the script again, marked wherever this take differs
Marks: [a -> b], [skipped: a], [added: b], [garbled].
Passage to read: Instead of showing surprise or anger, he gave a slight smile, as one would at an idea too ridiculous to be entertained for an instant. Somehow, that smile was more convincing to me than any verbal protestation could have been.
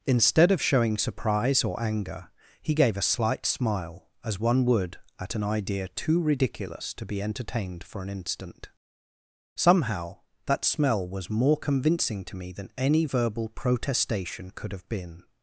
Instead of showing surprise or anger, he gave a slight smile, as one would at an idea too ridiculous to be entertained for an instant. Somehow, that [smile -> smell] was more convincing to me than any verbal protestation could have been.